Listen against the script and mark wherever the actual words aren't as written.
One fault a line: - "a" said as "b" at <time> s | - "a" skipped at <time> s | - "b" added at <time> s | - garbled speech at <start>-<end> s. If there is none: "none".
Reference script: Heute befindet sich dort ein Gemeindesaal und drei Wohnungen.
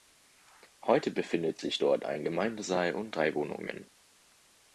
none